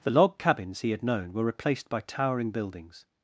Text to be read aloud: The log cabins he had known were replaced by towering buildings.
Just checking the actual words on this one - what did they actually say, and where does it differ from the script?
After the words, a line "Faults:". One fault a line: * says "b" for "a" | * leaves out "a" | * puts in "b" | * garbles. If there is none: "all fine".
The log cabins he had known were replaced by towering buildings.
Faults:
all fine